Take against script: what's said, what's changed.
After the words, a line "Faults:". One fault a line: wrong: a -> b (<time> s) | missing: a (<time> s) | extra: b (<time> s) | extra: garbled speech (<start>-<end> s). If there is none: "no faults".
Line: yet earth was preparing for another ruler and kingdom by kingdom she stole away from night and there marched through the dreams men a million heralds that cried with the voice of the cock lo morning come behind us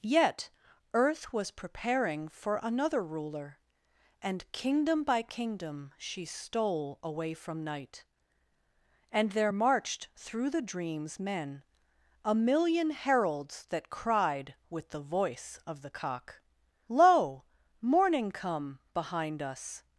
yet earth was preparing for another ruler and kingdom by kingdom she stole away from night and there marched through the dreams men a million heralds that cried with the voice of the cock lo morning come behind us
Faults:
no faults